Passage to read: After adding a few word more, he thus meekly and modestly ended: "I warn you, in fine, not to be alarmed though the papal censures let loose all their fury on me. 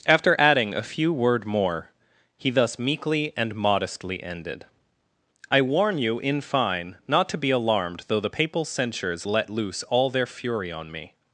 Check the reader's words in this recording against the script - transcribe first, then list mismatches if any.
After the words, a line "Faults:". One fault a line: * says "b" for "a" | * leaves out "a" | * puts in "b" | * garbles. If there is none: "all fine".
After adding a few word more, he thus meekly and modestly ended: "I warn you, in fine, not to be alarmed though the papal censures let loose all their fury on me.
Faults:
all fine